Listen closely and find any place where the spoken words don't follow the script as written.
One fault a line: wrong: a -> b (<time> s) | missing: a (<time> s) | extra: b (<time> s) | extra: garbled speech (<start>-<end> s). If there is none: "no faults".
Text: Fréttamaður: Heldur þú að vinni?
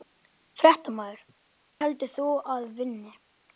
no faults